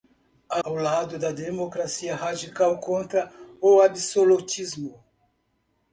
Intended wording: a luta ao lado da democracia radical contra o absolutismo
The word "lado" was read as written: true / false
true